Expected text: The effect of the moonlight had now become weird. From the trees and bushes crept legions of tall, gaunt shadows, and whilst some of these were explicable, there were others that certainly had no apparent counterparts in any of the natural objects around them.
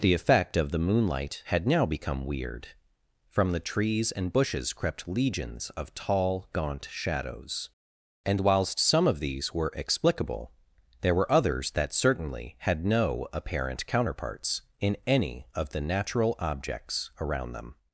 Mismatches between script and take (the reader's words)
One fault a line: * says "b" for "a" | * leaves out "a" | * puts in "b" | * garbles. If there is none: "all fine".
all fine